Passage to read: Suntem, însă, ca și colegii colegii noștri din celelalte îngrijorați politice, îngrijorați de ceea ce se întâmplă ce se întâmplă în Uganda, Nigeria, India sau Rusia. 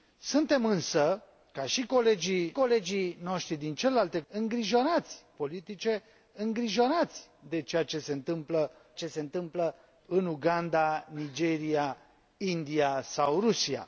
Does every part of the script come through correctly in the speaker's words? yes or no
yes